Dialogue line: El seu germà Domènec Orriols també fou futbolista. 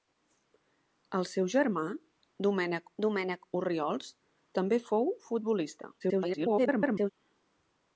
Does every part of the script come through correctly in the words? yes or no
no